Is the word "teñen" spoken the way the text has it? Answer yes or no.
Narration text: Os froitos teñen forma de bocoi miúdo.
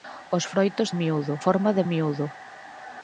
no